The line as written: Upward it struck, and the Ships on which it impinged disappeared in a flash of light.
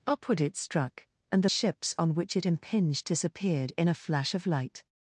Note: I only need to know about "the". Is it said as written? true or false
true